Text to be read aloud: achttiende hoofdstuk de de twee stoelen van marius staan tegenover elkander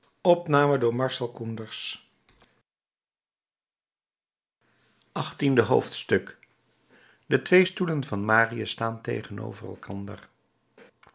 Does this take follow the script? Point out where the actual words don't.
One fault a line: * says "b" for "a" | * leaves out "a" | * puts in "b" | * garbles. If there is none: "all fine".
* leaves out "de"